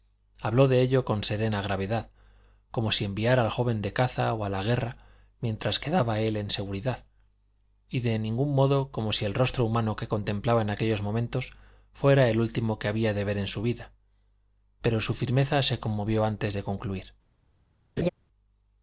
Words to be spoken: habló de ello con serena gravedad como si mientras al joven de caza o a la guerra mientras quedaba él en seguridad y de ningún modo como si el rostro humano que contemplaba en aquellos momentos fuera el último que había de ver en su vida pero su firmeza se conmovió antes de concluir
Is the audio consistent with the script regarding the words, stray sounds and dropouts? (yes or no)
no